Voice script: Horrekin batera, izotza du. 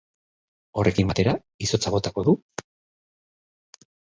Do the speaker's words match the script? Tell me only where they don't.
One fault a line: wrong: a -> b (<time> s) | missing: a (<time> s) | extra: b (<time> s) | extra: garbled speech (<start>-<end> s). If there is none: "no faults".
extra: botako (2.0 s)